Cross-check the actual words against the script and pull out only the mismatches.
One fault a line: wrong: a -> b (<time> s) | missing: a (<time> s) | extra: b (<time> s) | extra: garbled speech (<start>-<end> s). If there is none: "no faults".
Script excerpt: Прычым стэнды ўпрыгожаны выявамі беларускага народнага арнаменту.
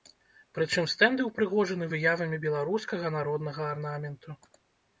no faults